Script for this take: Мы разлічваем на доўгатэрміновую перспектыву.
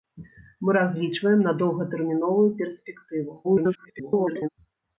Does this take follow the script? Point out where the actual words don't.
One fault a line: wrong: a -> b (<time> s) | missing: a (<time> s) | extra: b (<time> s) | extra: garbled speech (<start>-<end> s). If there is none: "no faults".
extra: garbled speech (3.4-4.5 s)